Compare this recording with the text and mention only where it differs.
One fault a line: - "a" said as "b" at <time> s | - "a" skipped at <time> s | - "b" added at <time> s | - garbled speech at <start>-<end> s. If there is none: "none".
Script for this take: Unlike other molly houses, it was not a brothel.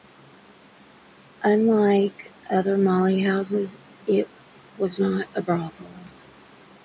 none